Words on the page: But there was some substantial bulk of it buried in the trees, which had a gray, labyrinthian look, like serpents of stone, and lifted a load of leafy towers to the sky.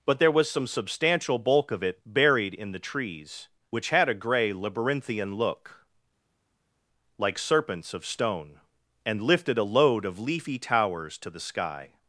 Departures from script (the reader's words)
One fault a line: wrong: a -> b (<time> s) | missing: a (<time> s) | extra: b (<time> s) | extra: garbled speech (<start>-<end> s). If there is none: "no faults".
no faults